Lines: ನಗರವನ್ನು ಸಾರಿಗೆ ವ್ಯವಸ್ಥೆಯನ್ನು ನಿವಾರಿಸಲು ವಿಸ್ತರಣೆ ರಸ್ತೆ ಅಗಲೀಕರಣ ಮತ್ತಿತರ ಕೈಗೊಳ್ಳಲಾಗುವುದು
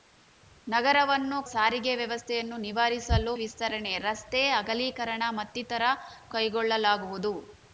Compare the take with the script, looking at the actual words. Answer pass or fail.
pass